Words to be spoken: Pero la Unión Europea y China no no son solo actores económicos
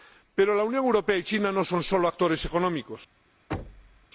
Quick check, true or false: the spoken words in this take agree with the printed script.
false